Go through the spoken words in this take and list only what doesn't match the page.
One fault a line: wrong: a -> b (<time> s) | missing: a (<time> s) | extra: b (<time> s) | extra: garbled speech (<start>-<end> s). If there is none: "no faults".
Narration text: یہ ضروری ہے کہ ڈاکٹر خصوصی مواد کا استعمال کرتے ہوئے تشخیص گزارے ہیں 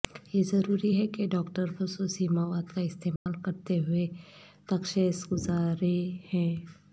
no faults